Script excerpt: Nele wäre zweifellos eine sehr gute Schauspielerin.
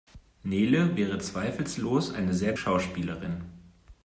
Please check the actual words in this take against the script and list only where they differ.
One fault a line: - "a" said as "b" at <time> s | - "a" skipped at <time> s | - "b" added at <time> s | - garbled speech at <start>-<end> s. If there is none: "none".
- "gute" skipped at 2.5 s